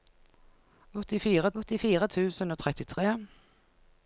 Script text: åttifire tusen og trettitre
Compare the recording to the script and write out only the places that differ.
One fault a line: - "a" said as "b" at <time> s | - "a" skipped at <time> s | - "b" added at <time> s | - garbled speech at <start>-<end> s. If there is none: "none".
- "åttifire" added at 1.6 s